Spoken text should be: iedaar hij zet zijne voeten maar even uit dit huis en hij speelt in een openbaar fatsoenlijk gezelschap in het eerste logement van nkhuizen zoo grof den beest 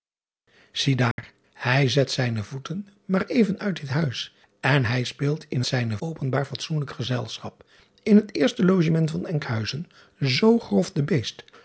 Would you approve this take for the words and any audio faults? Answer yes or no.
no